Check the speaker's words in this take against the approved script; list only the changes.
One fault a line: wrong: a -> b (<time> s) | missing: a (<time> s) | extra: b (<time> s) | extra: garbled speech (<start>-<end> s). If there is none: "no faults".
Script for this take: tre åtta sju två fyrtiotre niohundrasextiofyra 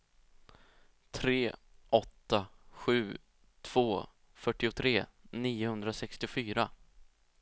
no faults